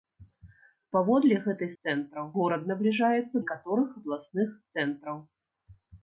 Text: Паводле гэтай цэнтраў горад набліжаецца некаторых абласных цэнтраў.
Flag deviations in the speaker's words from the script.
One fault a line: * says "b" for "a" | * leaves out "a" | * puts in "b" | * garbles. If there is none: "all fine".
all fine